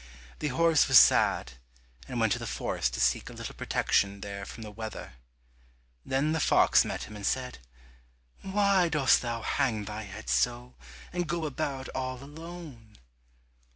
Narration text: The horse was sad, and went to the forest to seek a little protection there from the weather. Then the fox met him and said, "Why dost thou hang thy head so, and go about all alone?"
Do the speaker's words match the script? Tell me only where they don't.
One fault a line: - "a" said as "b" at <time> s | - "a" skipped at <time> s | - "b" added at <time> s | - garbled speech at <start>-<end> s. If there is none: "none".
none